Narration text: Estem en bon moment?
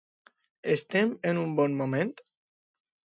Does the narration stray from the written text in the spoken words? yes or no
yes